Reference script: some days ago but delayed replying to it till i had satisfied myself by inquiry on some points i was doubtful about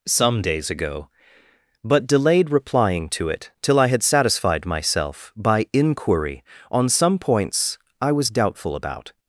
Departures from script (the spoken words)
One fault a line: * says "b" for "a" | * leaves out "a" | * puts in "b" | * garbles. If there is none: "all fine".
all fine